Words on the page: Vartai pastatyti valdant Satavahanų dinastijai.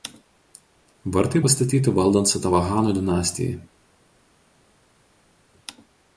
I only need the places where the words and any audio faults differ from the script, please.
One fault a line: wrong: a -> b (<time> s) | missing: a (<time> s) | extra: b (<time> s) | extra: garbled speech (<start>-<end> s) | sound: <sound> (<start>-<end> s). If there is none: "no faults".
no faults